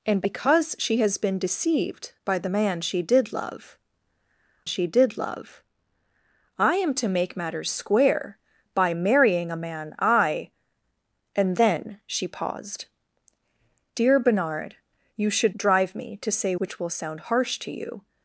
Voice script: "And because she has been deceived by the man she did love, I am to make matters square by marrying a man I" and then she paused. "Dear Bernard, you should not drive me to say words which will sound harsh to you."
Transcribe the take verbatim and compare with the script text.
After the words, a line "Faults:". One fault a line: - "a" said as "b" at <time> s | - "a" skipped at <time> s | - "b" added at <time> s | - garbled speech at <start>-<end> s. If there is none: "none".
"And because she has been deceived by the man she did love she did love, I am to make matters square by marrying a man I" and then she paused. "Dear Bernard, you should drive me to say which will sound harsh to you."
Faults:
- "she did love" added at 4.7 s
- "not" skipped at 15.6 s
- "words" skipped at 16.5 s